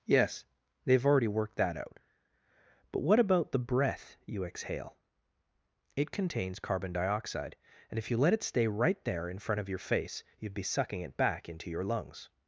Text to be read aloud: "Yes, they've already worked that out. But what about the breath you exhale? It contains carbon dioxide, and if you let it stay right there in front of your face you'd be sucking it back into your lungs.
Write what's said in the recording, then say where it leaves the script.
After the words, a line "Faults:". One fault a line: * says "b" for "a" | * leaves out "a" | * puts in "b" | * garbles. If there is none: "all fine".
"Yes, they've already worked that out. But what about the breath you exhale? It contains carbon dioxide, and if you let it stay right there in front of your face you'd be sucking it back into your lungs.
Faults:
all fine